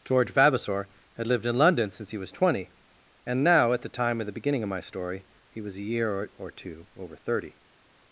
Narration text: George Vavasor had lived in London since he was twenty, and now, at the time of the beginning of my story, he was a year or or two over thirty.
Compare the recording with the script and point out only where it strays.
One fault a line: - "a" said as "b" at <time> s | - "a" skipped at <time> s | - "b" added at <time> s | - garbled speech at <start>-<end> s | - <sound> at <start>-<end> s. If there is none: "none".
none